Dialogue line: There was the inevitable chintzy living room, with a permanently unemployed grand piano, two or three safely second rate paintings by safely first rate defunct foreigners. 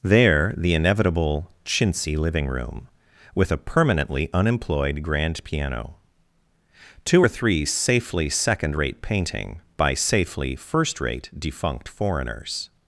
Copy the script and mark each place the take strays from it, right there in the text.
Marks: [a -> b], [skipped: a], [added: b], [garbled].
There [skipped: was] the inevitable chintzy living room, with a permanently unemployed grand piano, two or three safely second rate [paintings -> painting] by safely first rate defunct foreigners.